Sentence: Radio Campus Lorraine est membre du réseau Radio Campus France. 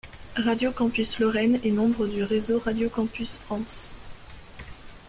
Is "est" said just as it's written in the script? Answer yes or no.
yes